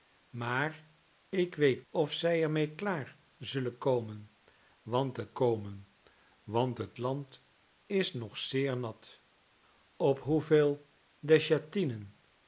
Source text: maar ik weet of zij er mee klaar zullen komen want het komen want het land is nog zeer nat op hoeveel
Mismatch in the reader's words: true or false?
false